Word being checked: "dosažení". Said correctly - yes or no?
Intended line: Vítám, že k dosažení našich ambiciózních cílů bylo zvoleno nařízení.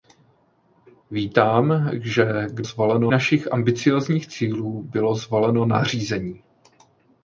no